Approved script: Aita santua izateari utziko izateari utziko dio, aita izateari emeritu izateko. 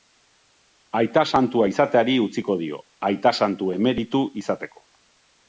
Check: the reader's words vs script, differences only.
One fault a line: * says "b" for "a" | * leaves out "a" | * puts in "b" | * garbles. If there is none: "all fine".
* leaves out "izateari utziko"
* says "santu" for "izateari"